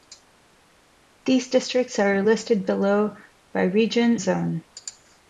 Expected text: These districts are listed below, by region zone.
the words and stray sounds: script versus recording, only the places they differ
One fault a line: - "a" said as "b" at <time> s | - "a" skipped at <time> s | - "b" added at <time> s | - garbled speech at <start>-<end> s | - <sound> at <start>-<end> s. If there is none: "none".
none